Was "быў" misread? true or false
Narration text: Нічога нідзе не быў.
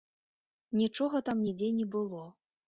true